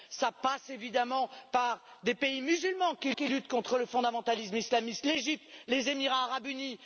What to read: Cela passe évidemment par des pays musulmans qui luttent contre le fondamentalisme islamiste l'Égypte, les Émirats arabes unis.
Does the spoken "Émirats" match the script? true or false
true